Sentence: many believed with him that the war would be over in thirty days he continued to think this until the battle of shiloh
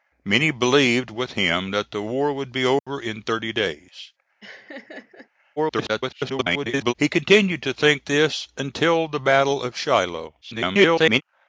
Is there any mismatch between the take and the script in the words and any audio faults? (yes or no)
yes